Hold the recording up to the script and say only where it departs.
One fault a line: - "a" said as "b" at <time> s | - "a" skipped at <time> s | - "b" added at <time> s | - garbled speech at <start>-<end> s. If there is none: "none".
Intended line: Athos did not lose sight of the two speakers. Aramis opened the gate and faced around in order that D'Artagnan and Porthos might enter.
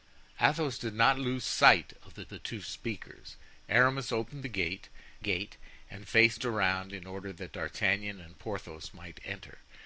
- "the" added at 2.3 s
- "gate" added at 5.2 s